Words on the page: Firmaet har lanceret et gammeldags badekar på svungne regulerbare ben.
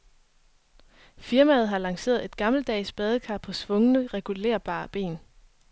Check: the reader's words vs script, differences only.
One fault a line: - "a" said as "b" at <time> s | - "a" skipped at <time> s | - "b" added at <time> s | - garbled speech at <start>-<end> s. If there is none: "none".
none